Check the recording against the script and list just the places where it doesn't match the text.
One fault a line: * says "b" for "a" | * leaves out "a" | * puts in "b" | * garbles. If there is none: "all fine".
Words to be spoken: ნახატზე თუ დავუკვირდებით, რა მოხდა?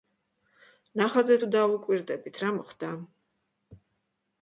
all fine